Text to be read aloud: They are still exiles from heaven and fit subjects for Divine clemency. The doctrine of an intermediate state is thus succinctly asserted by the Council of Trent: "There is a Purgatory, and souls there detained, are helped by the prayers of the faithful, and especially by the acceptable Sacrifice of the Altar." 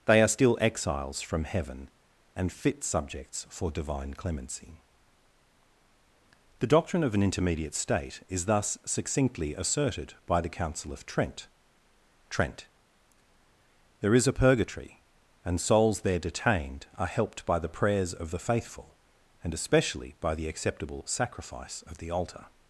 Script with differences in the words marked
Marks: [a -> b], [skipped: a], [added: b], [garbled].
They are still exiles from heaven and fit subjects for Divine clemency. The doctrine of an intermediate state is thus succinctly asserted by the Council of Trent: [added: Trent] "There is a Purgatory, and souls there detained, are helped by the prayers of the faithful, and especially by the acceptable Sacrifice of the Altar."